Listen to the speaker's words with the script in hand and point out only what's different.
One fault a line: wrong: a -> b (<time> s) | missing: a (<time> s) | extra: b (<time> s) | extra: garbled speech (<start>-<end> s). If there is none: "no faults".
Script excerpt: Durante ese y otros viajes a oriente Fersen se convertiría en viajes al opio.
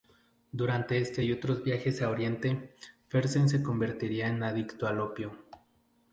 wrong: ese -> este (1.0 s)
wrong: viajes -> adicto (4.4 s)